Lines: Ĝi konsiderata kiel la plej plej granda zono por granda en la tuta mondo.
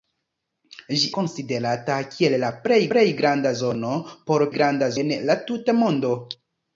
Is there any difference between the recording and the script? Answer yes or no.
no